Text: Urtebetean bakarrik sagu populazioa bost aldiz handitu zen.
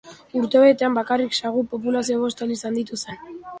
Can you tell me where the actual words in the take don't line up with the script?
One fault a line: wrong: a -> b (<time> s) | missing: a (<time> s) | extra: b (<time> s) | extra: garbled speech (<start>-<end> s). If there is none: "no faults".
no faults